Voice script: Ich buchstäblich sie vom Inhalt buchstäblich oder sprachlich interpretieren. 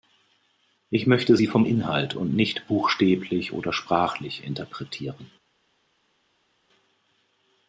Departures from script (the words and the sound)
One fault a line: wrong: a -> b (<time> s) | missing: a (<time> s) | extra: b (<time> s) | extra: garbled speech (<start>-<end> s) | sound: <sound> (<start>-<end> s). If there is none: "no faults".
wrong: buchstäblich -> möchte (1.1 s)
extra: und nicht (2.1 s)